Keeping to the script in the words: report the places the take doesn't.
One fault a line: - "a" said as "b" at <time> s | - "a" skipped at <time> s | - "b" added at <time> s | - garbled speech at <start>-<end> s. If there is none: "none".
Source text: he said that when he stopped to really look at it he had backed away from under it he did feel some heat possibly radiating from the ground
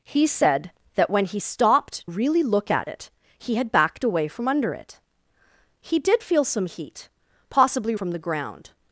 - "to" skipped at 2.1 s
- "radiating" skipped at 7.9 s